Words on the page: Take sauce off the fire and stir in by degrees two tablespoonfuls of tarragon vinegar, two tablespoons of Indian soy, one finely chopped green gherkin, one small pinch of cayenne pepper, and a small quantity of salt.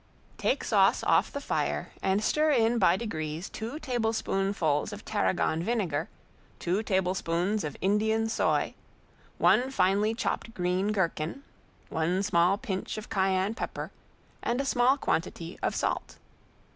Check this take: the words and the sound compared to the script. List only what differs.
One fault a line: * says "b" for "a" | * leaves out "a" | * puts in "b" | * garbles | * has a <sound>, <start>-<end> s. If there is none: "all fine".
all fine